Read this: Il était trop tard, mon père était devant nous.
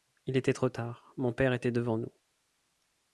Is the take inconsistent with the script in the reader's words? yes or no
no